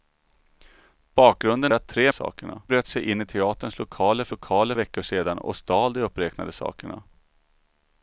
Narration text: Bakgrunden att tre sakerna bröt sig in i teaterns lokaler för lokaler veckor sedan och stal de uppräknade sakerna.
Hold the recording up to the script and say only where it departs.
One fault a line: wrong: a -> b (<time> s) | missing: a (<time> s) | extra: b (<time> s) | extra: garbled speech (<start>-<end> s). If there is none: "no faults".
no faults